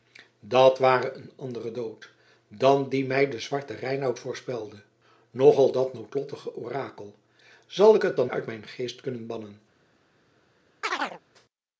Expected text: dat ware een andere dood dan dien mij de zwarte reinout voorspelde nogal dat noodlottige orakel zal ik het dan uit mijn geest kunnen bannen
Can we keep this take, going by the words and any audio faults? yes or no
no